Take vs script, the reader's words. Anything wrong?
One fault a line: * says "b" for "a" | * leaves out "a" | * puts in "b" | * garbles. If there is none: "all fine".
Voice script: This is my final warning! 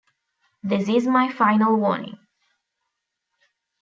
all fine